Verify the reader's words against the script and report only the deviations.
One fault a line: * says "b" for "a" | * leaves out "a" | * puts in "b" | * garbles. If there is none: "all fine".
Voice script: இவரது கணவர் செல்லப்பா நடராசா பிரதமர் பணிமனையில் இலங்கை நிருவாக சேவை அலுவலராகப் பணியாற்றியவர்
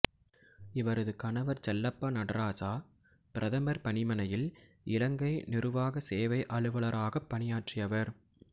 all fine